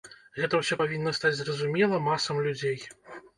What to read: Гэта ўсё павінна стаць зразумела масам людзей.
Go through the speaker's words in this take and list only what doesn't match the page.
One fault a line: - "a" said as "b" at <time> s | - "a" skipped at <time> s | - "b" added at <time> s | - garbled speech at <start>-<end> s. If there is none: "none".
none